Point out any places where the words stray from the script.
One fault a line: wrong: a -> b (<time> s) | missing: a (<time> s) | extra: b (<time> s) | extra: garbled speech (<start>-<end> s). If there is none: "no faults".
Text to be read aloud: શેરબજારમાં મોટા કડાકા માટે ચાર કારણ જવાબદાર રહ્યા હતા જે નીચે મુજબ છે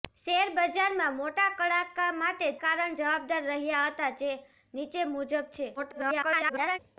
missing: ચાર (2.5 s)
extra: garbled speech (5.8-6.8 s)